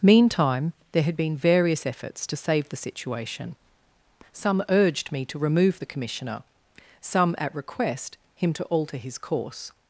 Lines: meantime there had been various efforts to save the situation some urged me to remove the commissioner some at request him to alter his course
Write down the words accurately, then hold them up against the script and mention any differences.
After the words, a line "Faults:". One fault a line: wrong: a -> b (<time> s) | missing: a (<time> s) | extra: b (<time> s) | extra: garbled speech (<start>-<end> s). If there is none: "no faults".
meantime there had been various efforts to save the situation some urged me to remove the commissioner some at request him to alter his course
Faults:
no faults